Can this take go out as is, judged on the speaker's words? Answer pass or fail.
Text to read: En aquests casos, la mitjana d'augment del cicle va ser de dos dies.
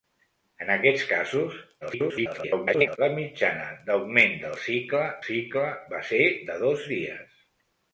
fail